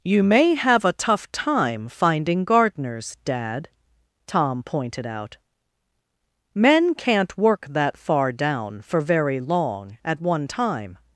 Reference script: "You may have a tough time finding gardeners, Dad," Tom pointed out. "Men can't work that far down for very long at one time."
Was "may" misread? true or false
false